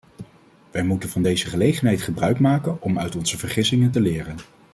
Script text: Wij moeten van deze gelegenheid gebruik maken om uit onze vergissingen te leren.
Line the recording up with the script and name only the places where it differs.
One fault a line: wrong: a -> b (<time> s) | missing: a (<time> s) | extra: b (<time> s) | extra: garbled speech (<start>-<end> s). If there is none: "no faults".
no faults